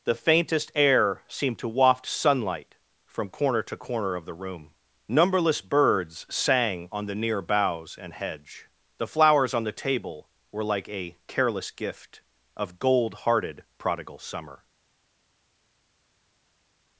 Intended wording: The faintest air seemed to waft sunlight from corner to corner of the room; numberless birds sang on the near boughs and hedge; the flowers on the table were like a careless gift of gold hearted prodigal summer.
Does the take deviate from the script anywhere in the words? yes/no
no